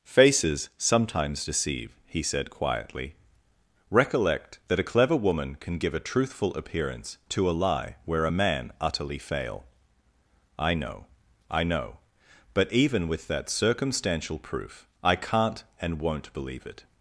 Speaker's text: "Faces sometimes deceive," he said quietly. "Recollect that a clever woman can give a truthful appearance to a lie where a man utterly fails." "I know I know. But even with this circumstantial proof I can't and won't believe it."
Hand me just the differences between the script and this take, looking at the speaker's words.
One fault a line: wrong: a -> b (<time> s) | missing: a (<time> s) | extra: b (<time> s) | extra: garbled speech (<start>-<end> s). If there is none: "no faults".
wrong: fails -> fail (9.2 s)
wrong: this -> that (13.3 s)